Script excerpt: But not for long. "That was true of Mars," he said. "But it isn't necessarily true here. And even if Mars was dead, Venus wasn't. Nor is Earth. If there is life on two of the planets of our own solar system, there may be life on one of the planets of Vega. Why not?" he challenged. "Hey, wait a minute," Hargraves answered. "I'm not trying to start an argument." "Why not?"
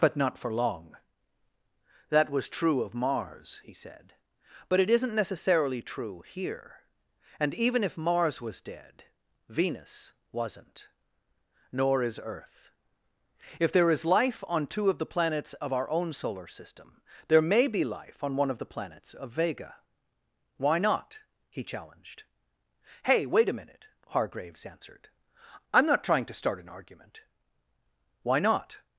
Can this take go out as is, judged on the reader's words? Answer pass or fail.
pass